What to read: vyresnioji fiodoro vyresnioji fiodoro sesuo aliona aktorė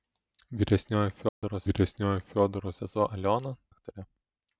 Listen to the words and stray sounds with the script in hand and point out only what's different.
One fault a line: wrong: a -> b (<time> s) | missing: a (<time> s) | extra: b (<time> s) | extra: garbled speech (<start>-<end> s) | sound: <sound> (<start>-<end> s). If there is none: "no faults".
sound: dropout (1.3-1.4 s)